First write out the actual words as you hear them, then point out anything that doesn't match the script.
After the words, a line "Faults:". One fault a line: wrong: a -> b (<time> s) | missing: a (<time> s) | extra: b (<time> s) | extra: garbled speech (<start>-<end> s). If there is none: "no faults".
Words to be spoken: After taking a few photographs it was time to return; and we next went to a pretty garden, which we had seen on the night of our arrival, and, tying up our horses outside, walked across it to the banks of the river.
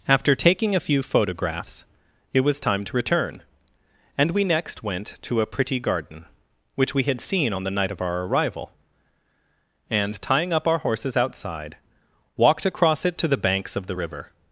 After taking a few photographs it was time to return; and we next went to a pretty garden, which we had seen on the night of our arrival, and, tying up our horses outside, walked across it to the banks of the river.
Faults:
no faults